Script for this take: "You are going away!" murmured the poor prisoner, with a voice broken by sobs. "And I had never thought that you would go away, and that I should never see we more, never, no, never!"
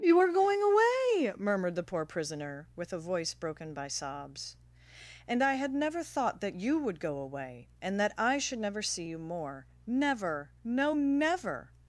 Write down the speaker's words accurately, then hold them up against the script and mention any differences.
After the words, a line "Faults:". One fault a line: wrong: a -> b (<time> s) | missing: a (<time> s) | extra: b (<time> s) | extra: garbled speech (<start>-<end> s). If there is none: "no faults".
"You are going away!" murmured the poor prisoner, with a voice broken by sobs. "And I had never thought that you would go away, and that I should never see you more, never, no, never!"
Faults:
wrong: we -> you (9.0 s)